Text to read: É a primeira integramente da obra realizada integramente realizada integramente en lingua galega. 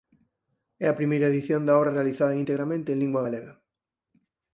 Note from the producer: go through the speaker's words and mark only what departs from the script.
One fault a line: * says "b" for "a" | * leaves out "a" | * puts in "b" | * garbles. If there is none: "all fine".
* says "edición" for "integramente"
* leaves out "realizada integramente"